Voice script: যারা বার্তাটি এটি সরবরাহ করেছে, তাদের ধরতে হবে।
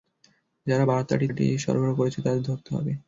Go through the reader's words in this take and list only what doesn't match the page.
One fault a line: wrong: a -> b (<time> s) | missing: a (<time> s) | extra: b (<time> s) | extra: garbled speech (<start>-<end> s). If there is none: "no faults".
no faults